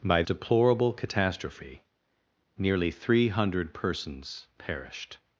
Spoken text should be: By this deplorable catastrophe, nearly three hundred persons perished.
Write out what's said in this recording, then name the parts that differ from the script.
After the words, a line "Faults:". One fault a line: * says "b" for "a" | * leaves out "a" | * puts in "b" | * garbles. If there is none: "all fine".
By deplorable catastrophe, nearly three hundred persons perished.
Faults:
* leaves out "this"